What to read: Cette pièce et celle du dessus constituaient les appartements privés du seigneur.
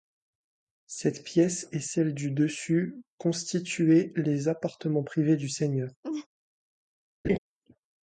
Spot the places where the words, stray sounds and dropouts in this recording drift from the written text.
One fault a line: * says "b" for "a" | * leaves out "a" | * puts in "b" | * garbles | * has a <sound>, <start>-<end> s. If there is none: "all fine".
* has a laugh, 6.0-6.3 s
* has a laugh, 7.2-7.4 s